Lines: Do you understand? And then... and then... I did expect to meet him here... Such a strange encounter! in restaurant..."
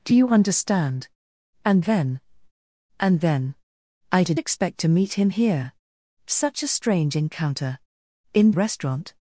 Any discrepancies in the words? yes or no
no